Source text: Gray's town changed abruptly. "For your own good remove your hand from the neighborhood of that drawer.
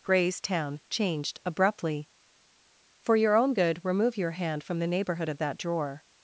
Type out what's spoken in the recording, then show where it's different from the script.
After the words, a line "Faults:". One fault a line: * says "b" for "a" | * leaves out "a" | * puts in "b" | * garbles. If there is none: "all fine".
Gray's town changed abruptly. "For your own good remove your hand from the neighborhood of that drawer.
Faults:
all fine